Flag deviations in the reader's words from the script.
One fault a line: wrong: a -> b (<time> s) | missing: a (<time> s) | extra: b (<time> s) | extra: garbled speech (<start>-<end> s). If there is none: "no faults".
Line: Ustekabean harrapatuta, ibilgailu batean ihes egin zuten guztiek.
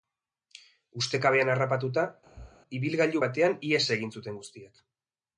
no faults